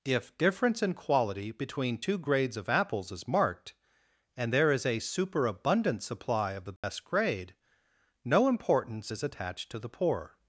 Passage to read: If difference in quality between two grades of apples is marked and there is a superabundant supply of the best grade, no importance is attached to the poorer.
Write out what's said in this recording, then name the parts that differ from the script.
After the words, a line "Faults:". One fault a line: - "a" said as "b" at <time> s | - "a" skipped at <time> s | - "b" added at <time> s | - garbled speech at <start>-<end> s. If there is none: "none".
If difference in quality between two grades of apples is marked and there is a superabundant supply of the best grade, no importance is attached to the poor.
Faults:
- "poorer" said as "poor" at 9.9 s